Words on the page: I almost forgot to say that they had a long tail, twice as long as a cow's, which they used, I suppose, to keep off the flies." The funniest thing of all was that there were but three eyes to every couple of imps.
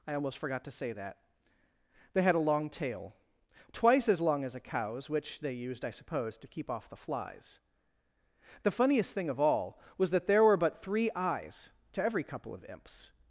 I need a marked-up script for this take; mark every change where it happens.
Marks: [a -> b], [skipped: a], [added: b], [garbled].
I almost forgot to say that they had a long tail, twice as long as a cow's, which they used, I suppose, to keep off the flies." The funniest thing of all was that there were but three eyes to every couple of imps.